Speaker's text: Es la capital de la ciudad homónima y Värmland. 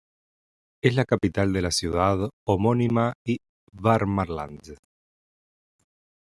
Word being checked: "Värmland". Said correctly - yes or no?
yes